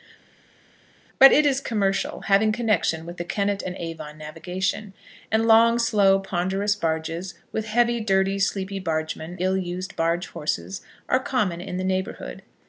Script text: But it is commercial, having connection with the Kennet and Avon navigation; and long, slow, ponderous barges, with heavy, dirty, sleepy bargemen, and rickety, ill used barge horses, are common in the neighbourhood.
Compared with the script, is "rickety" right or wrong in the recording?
wrong